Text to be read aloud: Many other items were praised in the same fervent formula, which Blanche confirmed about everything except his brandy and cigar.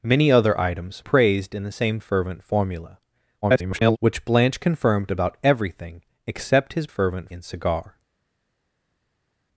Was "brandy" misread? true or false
true